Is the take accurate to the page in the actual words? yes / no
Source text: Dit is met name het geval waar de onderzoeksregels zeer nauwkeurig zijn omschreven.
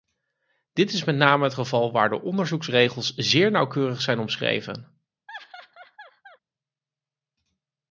yes